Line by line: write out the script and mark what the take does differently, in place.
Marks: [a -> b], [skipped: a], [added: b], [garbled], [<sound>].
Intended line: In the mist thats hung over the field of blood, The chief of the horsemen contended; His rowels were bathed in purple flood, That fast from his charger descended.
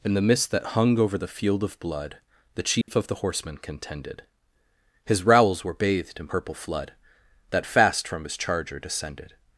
In the mist [thats -> that] hung over the field of blood, The chief [dropout] of the horsemen contended; His rowels were bathed in purple flood, That fast from his charger descended.